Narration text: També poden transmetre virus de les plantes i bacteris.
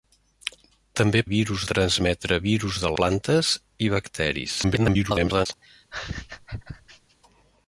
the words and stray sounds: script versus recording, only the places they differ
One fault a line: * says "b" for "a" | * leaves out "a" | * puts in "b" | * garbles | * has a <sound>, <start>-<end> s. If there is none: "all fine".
* says "virus" for "poden"
* leaves out "les"
* garbles
* has a laugh, 5.6-7.2 s